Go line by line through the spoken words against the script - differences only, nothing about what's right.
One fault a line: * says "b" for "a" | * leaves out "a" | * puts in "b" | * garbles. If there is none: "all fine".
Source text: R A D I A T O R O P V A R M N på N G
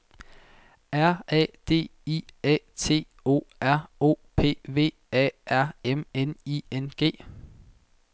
* says "I" for "på"